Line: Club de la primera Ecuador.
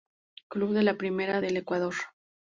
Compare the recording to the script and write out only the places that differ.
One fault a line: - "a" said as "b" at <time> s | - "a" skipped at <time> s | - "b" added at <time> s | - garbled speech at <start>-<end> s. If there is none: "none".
- "del" added at 1.4 s